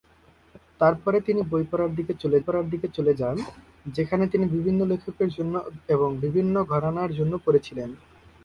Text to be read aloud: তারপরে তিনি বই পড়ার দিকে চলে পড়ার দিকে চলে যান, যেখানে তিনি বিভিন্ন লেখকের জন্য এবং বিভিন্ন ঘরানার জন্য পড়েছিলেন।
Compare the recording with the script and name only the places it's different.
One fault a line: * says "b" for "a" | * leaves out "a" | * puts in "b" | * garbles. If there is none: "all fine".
all fine